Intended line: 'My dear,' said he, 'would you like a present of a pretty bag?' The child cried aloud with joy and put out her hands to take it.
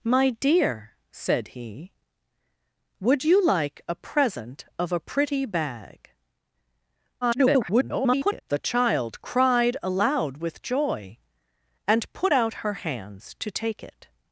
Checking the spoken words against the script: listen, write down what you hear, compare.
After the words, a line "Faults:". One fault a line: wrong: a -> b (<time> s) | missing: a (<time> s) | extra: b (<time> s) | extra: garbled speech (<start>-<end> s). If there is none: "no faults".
'My dear,' said he, 'would you like a present of a pretty bag?' [garbled] The child cried aloud with joy and put out her hands to take it.
Faults:
extra: garbled speech (7.2-8.4 s)